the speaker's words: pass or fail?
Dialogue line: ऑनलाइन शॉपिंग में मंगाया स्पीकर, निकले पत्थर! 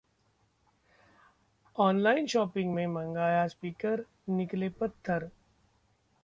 pass